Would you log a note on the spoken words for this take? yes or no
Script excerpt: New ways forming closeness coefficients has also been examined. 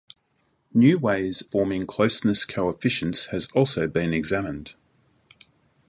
no